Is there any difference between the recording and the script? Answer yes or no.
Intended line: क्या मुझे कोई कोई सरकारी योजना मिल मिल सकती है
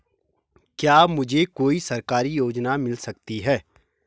yes